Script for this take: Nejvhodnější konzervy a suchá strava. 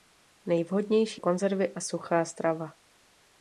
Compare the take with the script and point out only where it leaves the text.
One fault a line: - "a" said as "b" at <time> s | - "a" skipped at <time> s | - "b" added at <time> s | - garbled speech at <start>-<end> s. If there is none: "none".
none